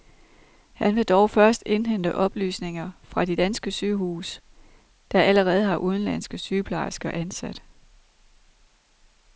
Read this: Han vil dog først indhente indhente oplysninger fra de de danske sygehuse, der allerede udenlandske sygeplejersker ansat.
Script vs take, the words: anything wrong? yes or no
yes